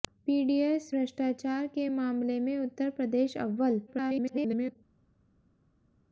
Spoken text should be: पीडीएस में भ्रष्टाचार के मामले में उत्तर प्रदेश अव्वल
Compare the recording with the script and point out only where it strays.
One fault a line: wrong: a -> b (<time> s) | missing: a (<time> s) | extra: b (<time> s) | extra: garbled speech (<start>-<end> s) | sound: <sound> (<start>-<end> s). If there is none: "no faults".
missing: में (0.9 s)
extra: garbled speech (3.9-4.8 s)